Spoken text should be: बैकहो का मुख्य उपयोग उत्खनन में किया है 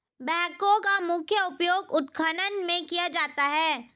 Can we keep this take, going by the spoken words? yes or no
no